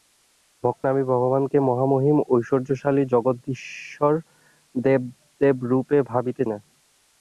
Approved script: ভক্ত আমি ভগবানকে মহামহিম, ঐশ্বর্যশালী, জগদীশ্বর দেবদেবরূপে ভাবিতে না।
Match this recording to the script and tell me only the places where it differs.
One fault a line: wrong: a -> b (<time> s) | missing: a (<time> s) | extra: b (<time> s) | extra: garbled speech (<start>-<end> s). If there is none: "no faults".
no faults